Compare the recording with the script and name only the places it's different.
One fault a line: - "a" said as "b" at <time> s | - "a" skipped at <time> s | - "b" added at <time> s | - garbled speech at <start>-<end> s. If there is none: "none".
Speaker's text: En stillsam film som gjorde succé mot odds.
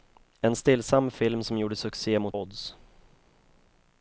none